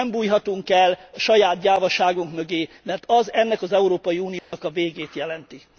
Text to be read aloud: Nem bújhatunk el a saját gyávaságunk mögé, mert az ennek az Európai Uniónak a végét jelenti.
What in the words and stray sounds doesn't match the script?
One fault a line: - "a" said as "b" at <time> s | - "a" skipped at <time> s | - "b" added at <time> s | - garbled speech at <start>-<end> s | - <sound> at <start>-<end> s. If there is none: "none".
- dropout at 4.4-4.5 s